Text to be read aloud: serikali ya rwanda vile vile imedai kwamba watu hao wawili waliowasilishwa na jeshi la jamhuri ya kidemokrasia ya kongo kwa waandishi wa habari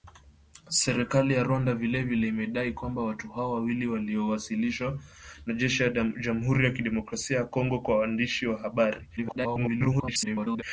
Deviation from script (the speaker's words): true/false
true